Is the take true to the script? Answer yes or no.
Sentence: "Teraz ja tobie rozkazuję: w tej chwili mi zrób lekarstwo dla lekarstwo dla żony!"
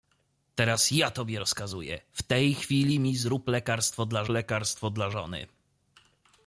yes